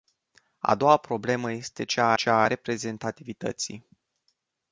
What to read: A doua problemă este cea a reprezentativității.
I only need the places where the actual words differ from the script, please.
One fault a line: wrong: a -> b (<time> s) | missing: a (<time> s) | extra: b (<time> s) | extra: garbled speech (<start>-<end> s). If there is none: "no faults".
extra: cea (2.1 s)